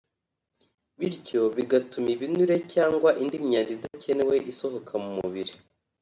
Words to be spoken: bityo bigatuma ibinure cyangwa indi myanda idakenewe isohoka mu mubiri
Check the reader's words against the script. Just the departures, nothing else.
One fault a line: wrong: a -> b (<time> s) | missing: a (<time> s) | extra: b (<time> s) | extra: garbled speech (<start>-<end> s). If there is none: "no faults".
no faults